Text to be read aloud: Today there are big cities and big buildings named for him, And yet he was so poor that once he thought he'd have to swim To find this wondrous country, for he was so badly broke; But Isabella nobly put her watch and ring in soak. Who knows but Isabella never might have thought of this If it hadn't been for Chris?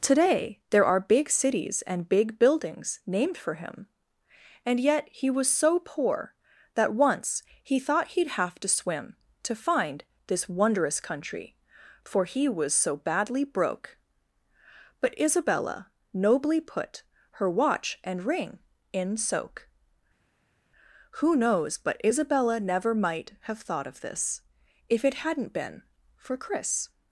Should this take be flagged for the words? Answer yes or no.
no